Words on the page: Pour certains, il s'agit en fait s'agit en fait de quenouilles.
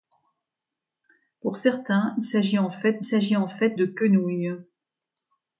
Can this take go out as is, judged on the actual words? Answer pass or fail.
pass